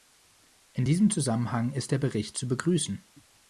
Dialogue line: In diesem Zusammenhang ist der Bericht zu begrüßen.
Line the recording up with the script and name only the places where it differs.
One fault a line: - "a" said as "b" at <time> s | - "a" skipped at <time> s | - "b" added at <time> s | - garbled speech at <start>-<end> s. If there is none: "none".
none